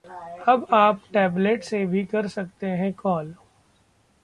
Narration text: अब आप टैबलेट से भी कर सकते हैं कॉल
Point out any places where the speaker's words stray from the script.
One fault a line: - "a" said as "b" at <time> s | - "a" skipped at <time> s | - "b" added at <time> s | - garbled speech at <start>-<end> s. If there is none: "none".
none